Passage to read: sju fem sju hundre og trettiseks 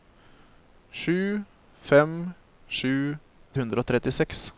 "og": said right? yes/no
yes